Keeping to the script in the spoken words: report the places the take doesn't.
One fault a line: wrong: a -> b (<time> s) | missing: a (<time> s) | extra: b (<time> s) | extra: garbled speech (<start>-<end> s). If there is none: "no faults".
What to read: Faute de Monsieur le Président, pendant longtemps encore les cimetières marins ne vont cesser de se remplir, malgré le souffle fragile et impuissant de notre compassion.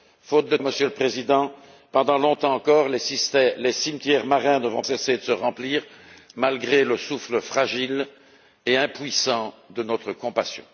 no faults